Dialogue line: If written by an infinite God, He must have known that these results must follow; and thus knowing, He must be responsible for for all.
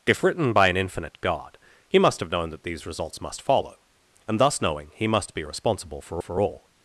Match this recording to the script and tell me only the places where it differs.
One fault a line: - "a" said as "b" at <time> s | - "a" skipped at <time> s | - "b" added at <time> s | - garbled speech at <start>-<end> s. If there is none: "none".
none